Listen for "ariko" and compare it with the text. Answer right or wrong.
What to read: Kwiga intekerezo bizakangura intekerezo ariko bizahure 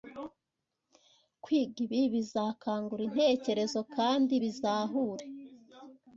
wrong